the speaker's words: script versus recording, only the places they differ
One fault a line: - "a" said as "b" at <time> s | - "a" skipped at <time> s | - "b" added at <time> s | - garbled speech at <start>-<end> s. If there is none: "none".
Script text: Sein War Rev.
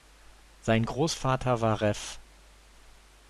- "Großvater" added at 0.8 s